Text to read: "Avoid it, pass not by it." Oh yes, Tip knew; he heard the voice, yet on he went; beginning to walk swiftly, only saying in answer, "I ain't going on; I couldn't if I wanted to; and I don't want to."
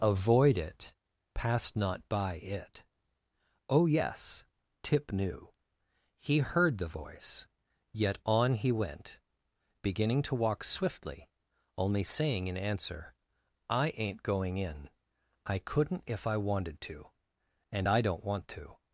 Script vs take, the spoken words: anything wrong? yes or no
yes